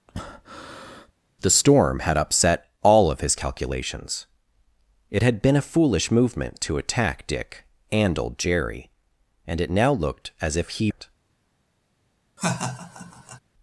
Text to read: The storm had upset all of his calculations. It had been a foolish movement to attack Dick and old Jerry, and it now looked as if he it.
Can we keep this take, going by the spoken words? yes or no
yes